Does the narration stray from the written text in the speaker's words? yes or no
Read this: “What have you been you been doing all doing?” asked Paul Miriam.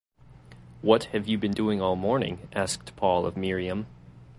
yes